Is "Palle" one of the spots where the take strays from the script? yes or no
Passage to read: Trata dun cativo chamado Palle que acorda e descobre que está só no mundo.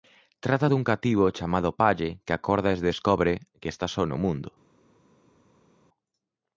no